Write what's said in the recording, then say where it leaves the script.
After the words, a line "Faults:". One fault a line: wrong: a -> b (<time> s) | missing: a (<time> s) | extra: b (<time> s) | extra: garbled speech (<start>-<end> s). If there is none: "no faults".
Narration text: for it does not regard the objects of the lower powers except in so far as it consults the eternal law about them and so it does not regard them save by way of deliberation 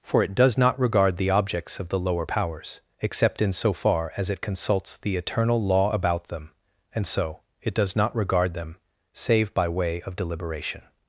for it does not regard the objects of the lower powers except in so far as it consults the eternal law about them and so it does not regard them save by way of deliberation
Faults:
no faults